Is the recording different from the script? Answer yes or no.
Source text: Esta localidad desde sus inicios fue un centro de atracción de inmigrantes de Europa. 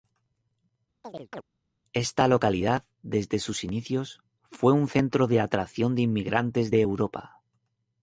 no